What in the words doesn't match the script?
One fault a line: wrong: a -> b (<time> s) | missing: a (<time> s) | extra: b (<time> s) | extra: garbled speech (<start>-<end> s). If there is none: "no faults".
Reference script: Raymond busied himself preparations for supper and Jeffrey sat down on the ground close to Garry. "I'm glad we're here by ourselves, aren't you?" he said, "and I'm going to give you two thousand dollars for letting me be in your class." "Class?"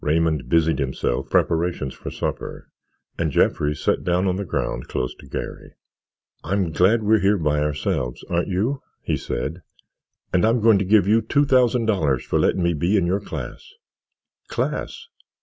no faults